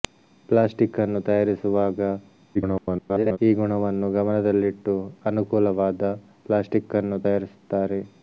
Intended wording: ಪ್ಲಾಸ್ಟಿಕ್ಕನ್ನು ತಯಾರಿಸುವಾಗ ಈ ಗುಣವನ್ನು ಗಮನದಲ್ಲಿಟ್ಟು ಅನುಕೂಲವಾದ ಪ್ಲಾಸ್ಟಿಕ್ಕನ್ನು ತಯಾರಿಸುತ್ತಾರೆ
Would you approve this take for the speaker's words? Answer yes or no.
no